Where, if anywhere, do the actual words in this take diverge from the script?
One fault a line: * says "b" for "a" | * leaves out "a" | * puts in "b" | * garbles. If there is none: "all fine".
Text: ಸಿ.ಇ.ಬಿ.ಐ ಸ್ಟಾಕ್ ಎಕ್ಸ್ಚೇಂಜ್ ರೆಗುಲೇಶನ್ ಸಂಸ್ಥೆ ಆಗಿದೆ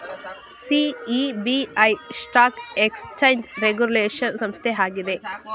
all fine